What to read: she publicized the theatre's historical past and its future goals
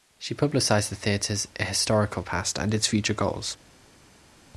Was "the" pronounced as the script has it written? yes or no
yes